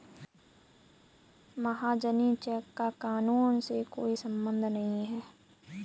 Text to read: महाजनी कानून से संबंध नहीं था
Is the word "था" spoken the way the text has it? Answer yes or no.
no